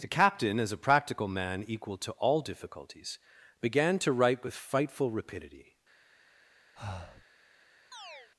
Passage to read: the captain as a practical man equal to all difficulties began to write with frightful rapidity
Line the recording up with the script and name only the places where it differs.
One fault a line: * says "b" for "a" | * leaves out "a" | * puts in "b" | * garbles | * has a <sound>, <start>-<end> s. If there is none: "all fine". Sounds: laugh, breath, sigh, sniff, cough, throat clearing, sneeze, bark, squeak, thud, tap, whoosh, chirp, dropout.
* has a breath, 6.8-7.3 s
* has a chirp, 7.9-8.3 s